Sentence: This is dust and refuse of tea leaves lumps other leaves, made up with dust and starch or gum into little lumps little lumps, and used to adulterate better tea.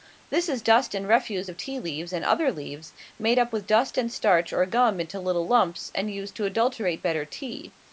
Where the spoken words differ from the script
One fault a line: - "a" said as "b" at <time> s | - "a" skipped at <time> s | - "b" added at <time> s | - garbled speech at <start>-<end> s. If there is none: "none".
- "lumps" said as "and" at 2.1 s
- "little lumps" skipped at 5.9 s